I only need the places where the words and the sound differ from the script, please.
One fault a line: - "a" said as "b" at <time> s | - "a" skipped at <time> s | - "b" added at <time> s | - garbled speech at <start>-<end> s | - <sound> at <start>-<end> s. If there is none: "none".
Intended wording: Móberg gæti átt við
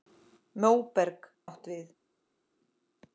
- "gæti" skipped at 1.3 s